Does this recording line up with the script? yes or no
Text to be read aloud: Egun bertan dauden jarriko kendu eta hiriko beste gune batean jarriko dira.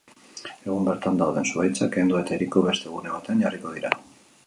no